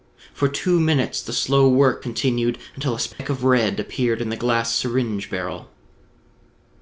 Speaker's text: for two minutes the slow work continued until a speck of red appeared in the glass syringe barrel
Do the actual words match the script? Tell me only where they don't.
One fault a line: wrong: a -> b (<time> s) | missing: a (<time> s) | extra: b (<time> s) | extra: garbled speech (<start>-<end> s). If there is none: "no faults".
no faults